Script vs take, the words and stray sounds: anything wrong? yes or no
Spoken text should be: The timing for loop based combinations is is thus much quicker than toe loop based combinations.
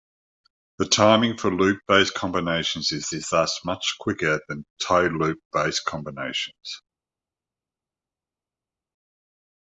no